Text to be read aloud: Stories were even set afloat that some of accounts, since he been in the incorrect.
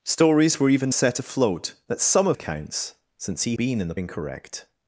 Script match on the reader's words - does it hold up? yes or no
yes